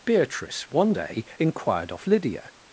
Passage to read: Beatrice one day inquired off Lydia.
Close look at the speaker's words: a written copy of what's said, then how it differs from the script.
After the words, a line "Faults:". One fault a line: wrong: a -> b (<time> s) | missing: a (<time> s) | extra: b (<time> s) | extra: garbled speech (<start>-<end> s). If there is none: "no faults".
Beatrice one day inquired off Lydia.
Faults:
no faults